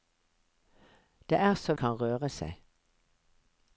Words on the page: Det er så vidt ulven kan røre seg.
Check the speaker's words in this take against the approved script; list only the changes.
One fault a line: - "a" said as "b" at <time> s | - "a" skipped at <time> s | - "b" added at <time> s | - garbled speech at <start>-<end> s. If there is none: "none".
- "vidt ulven" skipped at 1.7 s